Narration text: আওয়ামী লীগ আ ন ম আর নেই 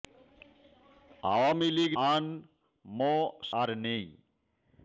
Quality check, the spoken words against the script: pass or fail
pass